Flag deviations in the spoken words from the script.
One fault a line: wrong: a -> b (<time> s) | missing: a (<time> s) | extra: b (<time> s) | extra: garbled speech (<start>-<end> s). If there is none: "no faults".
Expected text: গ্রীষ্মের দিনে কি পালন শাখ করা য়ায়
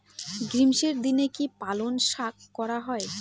no faults